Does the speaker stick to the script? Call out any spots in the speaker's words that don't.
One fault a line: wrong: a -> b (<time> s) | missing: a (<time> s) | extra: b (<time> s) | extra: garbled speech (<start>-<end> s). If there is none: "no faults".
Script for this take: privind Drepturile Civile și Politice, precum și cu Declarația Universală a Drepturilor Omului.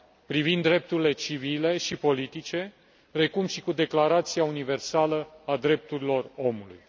no faults